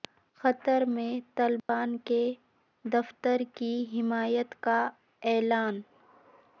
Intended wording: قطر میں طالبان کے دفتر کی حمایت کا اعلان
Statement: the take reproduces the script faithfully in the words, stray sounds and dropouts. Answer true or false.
false